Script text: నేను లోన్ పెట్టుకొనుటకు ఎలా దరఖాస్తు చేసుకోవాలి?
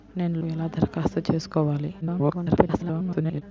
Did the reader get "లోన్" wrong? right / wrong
wrong